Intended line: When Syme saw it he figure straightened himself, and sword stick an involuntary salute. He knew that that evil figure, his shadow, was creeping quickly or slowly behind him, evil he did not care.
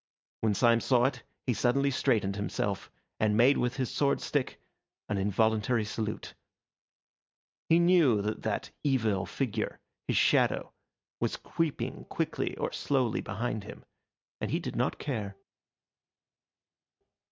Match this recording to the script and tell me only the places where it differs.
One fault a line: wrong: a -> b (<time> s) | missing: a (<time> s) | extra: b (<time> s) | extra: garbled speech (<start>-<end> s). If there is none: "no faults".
wrong: figure -> suddenly (1.5 s)
extra: made with his (3.4 s)
wrong: evil -> and (14.4 s)